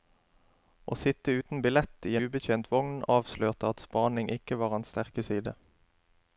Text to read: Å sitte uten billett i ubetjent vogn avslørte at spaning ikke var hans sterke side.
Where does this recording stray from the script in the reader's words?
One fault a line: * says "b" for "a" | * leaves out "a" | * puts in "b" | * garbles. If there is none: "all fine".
all fine